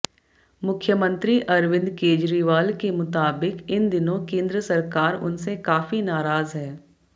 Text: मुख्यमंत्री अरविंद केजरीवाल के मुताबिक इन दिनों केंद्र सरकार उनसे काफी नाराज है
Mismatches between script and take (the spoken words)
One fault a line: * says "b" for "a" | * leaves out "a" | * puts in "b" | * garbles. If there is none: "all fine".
all fine